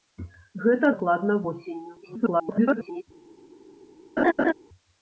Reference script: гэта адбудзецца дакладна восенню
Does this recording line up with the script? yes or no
no